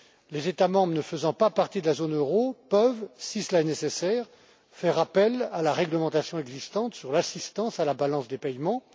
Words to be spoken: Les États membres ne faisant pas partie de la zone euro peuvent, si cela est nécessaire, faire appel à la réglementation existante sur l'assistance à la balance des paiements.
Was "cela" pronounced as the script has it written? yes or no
yes